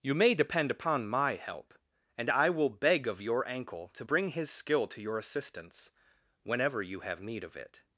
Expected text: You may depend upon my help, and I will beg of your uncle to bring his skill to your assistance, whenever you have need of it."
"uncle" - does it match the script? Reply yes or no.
no